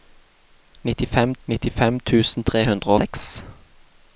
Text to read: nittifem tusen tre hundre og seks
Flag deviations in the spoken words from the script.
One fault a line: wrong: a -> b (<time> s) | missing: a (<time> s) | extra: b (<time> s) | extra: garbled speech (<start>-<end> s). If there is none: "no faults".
extra: nittifem (1.5 s)
missing: og (2.9 s)